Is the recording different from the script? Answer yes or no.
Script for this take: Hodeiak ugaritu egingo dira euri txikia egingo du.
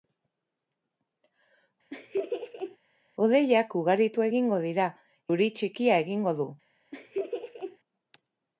no